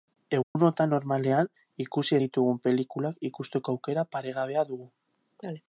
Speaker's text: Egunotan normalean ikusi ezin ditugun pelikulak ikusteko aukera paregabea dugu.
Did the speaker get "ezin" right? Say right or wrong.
wrong